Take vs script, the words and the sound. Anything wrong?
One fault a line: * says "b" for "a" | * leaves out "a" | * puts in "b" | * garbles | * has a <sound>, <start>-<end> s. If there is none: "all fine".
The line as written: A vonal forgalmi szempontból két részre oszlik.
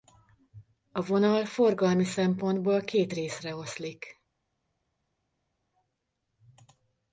all fine